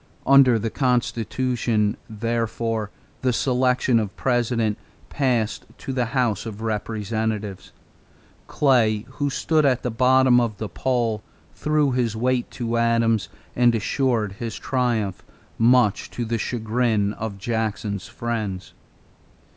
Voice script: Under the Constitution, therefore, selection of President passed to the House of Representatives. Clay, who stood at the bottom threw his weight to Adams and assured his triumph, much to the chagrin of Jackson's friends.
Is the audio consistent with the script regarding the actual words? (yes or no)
no